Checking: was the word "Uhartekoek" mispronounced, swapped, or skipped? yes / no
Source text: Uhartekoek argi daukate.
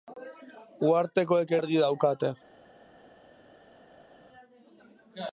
no